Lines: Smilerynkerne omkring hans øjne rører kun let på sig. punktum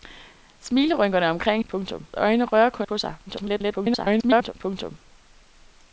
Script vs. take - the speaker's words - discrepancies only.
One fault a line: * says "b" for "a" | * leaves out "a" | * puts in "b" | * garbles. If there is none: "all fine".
* says "punktum" for "hans"
* leaves out "let"
* garbles